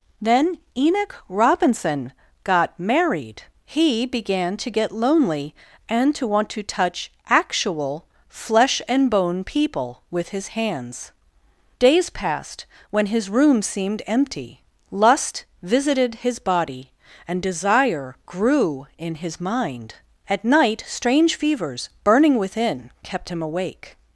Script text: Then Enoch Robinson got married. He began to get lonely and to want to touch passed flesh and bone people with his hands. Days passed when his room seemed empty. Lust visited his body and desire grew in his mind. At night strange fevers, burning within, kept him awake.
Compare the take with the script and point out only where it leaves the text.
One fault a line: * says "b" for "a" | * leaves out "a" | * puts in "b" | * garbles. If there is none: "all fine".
* says "actual" for "passed"